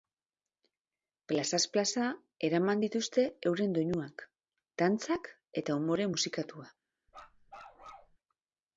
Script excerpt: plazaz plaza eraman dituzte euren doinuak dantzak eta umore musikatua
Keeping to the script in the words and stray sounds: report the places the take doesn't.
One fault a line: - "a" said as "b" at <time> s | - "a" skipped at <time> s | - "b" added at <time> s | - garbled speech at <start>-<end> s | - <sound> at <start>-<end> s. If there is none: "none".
- bark at 7.1-8.2 s